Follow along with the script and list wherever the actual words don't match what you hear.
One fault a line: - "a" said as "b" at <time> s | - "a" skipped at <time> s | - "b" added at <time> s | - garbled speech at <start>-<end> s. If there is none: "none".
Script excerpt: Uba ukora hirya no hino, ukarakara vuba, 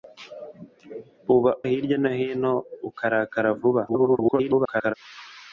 - "ukora" skipped at 1.5 s
- garbled speech at 3.9-4.9 s